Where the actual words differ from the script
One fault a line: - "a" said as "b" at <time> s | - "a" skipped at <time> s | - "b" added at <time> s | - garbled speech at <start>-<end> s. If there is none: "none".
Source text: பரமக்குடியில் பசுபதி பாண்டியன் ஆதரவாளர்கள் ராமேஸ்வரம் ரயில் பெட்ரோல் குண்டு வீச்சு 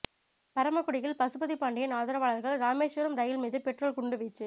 - "மீது" added at 3.4 s